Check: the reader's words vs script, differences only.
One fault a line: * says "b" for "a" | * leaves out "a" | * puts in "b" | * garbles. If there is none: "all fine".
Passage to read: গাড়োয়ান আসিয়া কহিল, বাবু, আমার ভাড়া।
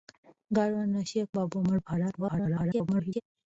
* leaves out "কহিল"
* garbles